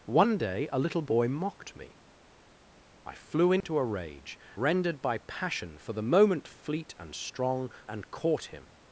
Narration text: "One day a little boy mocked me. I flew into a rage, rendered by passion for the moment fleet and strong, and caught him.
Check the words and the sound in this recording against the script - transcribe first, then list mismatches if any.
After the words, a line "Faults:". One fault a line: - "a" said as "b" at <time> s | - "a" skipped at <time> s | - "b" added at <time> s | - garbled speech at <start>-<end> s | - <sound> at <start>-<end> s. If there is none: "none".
"One day a little boy mocked me. I flew into a rage, rendered by passion for the moment fleet and strong, and caught him.
Faults:
- dropout at 3.6-3.6 s